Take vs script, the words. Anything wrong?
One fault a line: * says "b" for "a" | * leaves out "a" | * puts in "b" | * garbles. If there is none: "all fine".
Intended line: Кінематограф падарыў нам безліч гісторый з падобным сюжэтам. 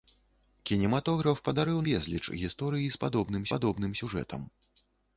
* leaves out "нам"
* puts in "падобным"